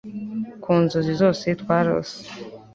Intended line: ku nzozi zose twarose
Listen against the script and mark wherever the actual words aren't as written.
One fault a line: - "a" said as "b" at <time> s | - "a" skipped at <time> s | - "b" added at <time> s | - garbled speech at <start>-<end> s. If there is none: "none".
none